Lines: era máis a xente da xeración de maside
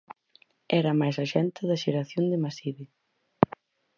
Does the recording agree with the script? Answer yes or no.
yes